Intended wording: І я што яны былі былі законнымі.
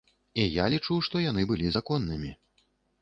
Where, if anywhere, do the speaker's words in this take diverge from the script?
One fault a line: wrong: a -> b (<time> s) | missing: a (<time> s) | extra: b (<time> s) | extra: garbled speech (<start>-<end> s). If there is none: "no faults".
extra: лічу (0.7 s)
missing: былі (1.7 s)